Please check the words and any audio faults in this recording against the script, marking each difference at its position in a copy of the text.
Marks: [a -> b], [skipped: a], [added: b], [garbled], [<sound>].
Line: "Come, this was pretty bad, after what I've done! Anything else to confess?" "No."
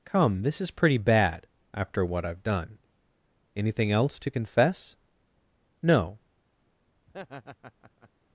"Come, this [was -> is] pretty bad, after what I've done! Anything else to confess?" "No." [laugh]